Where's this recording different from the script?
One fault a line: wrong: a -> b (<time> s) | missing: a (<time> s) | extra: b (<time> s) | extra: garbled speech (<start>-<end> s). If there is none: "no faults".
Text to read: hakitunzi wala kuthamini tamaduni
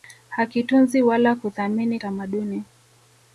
no faults